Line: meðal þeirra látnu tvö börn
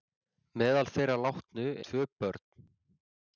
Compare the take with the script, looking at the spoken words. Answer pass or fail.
pass